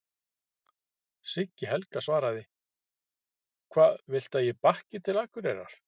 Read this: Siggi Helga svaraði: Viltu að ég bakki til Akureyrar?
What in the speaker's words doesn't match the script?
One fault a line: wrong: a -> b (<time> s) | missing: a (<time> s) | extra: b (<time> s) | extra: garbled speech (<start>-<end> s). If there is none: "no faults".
extra: Hvað (3.8 s)